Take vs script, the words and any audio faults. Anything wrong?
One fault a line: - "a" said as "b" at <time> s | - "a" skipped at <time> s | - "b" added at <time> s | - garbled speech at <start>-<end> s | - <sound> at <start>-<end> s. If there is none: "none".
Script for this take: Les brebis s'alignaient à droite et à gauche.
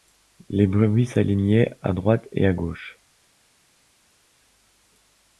none